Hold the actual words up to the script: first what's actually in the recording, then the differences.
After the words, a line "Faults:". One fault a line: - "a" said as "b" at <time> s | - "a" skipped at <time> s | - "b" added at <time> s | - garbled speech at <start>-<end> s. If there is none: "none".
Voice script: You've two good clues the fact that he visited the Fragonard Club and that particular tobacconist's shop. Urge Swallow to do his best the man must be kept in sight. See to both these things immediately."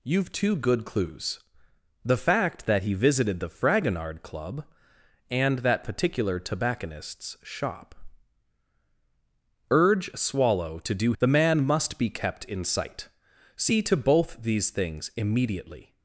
You've two good clues the fact that he visited the Fragonard Club and that particular tobacconist's shop. Urge Swallow to do the man must be kept in sight. See to both these things immediately."
Faults:
- "his best" skipped at 11.1 s